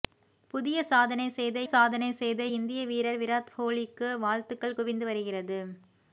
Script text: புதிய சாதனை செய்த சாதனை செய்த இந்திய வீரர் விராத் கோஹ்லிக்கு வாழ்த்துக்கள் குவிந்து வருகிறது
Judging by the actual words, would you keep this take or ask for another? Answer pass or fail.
pass